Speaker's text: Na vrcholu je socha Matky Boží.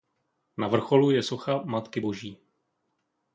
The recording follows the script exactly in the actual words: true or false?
true